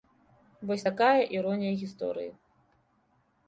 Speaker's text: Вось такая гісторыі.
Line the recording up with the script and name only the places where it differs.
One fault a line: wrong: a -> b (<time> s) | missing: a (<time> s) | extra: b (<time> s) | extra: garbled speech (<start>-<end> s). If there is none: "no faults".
extra: іронія (1.4 s)